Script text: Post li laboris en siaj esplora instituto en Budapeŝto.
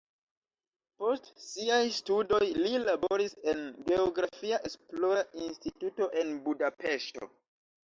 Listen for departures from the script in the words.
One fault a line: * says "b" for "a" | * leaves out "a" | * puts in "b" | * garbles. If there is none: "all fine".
* puts in "siaj studoj"
* says "geografia" for "siaj"